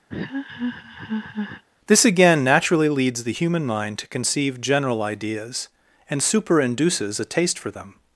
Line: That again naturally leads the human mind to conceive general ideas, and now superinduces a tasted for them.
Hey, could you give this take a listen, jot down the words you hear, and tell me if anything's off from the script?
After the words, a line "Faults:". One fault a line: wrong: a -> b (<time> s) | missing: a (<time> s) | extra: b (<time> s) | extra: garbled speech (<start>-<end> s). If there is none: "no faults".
This again naturally leads the human mind to conceive general ideas, and superinduces a taste for them.
Faults:
wrong: That -> This (1.9 s)
missing: now (6.2 s)
wrong: tasted -> taste (7.3 s)